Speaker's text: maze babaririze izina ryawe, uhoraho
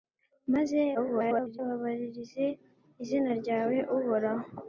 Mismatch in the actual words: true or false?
true